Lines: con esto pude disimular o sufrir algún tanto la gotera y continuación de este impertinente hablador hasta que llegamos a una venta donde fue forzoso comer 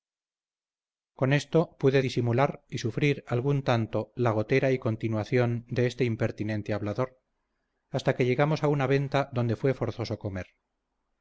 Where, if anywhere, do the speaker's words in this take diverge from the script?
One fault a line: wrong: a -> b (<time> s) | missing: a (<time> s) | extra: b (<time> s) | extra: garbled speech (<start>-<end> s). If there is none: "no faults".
wrong: o -> y (2.7 s)